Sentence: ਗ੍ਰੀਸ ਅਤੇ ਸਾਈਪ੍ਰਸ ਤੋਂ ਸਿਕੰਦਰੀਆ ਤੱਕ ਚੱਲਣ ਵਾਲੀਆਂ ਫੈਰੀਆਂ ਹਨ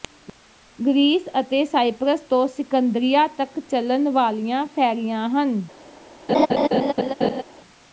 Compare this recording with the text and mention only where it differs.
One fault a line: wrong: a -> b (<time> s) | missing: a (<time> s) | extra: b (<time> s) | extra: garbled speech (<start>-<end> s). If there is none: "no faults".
no faults